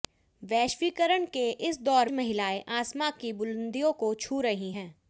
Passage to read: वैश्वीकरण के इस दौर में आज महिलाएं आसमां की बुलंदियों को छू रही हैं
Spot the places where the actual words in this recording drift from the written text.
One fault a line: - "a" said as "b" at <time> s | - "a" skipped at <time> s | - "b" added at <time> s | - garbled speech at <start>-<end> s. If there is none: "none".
- "में आज" skipped at 2.1 s